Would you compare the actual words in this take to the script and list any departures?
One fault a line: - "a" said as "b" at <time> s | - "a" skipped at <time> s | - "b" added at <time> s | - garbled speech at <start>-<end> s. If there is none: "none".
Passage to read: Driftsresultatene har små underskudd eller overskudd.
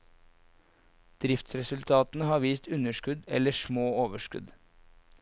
- "små" said as "vist" at 2.5 s
- "små" added at 3.5 s